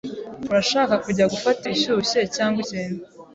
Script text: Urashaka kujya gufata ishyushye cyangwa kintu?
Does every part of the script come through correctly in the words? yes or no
yes